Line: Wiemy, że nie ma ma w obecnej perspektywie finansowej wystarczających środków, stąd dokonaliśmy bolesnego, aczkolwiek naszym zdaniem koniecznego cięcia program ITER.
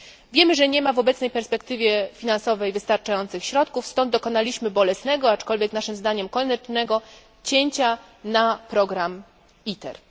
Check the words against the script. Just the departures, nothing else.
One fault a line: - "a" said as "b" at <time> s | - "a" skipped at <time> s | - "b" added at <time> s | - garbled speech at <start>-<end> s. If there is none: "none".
- "ma" skipped at 0.9 s
- "na" added at 8.2 s